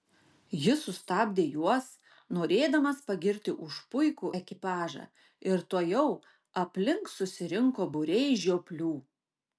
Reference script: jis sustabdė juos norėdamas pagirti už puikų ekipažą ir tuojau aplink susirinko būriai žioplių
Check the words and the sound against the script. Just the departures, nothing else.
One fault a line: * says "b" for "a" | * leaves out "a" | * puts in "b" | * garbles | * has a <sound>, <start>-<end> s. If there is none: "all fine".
all fine